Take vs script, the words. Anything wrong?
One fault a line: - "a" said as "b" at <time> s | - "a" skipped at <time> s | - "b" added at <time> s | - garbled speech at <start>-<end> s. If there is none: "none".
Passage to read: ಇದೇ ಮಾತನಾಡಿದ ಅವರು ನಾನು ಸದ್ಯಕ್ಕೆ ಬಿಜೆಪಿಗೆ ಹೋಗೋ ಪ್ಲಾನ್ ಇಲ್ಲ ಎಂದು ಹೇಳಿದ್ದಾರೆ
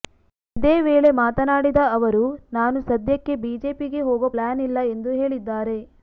- "ವೇಳೆ" added at 0.8 s